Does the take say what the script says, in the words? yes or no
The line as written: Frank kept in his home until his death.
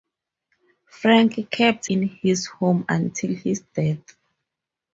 yes